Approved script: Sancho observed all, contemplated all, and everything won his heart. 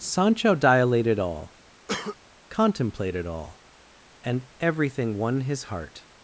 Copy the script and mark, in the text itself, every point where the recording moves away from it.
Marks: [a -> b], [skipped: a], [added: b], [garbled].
Sancho [observed -> dilated] all, contemplated all, and everything won his heart.